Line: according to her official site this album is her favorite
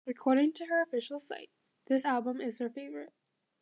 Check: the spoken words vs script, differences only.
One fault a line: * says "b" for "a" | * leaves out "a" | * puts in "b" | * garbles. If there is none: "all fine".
all fine